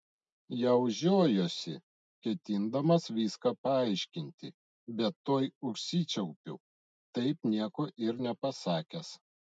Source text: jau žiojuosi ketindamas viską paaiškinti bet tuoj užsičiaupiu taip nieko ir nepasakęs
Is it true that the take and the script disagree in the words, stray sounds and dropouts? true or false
false